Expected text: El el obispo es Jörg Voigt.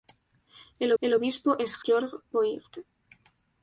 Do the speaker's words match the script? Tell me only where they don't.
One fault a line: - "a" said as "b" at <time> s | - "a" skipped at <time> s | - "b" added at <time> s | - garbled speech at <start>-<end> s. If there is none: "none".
none